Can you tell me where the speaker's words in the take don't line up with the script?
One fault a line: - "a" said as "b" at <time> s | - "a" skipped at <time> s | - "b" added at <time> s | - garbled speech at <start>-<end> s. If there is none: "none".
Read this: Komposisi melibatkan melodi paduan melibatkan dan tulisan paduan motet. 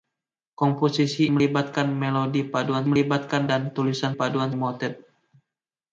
none